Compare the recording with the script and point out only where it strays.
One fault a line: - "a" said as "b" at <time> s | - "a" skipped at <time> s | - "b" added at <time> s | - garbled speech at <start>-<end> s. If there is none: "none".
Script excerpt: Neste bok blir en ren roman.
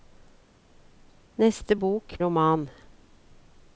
- "blir en ren" skipped at 2.2 s